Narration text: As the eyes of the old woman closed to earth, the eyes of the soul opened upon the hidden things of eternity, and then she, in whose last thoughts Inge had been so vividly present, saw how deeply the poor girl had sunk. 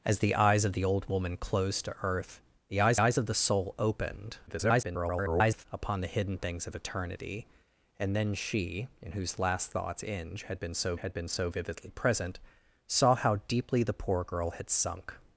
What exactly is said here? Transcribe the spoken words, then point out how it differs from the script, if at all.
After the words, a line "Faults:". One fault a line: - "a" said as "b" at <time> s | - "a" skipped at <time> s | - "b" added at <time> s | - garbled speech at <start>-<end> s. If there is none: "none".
As the eyes of the old woman closed to earth, the eyes eyes of the soul opened [garbled] upon the hidden things of eternity, and then she, in whose last thoughts Inge had been so had been so vividly present, saw how deeply the poor girl had sunk.
Faults:
- "eyes" added at 3.0 s
- garbled speech at 4.5-5.7 s
- "had been so" added at 11.0 s